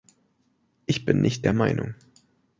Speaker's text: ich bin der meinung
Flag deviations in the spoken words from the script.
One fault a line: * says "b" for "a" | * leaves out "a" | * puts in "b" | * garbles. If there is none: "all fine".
* puts in "nicht"